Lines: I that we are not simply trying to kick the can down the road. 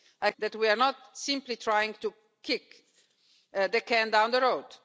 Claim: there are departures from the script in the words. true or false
false